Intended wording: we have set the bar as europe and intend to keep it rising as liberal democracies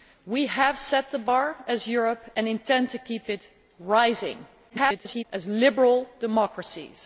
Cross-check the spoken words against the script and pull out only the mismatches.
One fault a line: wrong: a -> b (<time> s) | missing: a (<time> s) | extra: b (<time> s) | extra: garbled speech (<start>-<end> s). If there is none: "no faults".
extra: garbled speech (4.7-5.2 s)